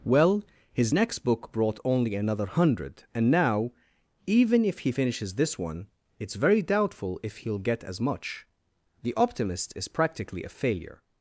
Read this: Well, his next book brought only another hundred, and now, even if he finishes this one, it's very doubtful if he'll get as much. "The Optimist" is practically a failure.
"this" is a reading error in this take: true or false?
false